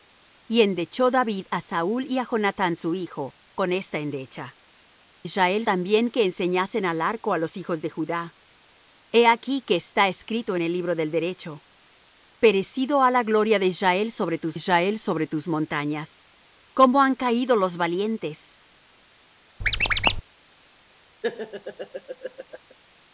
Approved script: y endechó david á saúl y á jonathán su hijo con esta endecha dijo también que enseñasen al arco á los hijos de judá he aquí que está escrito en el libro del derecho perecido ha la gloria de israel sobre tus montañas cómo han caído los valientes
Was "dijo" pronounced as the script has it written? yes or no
no